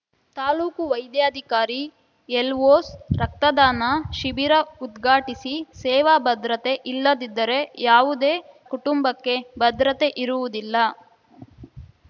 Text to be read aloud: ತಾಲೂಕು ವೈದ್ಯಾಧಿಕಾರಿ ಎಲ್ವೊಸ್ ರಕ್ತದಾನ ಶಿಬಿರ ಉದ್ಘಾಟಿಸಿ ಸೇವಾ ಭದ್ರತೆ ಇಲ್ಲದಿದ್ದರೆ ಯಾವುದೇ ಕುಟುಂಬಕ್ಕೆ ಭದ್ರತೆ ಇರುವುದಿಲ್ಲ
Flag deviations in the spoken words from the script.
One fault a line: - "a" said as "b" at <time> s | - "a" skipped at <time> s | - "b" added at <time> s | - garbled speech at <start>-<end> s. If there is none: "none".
none